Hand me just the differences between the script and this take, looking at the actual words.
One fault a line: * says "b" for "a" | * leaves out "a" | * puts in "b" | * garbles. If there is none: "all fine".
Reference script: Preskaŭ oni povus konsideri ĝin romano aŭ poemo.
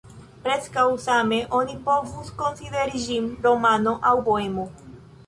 * puts in "same"